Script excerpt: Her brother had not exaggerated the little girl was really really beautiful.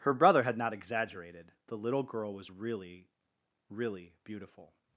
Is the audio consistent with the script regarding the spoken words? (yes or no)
yes